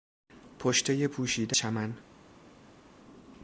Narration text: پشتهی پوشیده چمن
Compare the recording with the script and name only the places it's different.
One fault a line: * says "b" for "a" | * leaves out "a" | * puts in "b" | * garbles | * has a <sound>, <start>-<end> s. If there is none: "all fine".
all fine